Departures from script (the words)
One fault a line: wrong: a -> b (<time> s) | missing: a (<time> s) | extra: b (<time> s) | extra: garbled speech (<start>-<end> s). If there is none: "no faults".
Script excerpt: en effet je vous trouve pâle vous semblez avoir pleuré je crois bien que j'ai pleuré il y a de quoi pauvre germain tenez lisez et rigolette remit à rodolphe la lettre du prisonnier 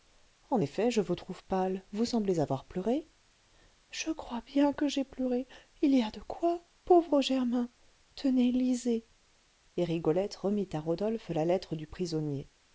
no faults